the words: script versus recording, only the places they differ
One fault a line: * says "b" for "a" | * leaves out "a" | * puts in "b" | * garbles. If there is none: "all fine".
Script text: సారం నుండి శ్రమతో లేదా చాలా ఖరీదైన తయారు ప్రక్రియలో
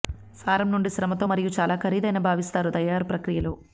* says "మరియు" for "లేదా"
* puts in "భావిస్తారు"